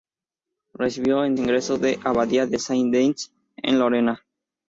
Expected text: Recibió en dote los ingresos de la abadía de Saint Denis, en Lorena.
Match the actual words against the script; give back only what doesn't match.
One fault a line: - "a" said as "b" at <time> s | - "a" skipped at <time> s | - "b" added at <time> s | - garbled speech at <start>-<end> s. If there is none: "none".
- "dote los" skipped at 1.4 s